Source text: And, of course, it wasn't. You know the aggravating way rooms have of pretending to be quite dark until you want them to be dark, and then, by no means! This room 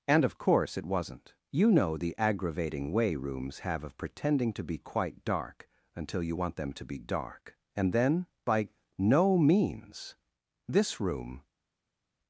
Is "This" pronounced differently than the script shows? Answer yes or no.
no